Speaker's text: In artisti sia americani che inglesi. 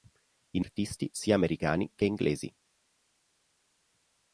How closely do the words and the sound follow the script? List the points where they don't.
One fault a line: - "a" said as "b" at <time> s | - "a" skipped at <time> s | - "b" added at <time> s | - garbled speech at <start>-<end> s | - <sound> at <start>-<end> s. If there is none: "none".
none